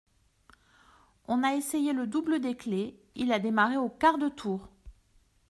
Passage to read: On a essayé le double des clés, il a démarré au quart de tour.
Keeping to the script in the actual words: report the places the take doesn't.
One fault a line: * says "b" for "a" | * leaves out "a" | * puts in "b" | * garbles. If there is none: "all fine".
all fine